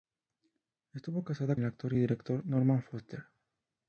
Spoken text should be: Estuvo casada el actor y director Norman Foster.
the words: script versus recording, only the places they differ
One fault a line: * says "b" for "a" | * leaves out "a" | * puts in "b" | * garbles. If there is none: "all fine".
all fine